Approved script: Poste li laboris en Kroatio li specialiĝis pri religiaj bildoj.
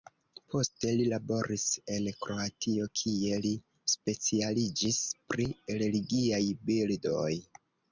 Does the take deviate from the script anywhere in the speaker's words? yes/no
yes